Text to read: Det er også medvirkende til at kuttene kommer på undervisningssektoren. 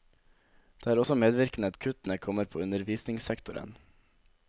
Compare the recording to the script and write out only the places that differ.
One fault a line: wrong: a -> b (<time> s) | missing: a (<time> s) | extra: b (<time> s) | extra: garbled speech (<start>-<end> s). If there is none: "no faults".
missing: til (1.7 s)